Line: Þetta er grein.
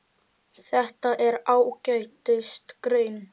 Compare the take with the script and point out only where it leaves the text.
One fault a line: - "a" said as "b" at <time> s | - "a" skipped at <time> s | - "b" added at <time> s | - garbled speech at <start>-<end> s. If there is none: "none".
- "ágætis" added at 1.6 s